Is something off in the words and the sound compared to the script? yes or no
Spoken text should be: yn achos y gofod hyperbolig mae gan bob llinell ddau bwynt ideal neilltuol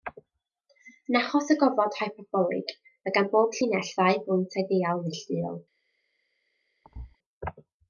yes